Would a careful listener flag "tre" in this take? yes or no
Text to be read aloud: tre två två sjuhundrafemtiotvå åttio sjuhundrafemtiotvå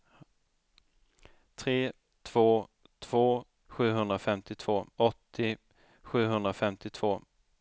no